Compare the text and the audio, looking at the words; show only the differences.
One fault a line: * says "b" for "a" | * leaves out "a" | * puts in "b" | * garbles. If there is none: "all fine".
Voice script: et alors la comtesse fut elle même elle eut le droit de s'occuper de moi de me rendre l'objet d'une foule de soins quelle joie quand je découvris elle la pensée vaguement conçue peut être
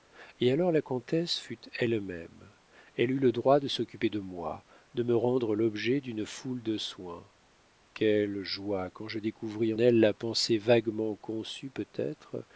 all fine